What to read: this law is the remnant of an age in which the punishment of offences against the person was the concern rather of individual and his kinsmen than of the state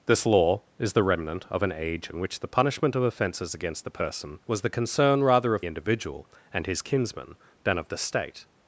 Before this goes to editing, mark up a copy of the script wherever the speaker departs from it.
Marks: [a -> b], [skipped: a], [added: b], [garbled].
this law is the remnant of an age in which the punishment of offences against the person was the concern rather of individual and his kinsmen than of the state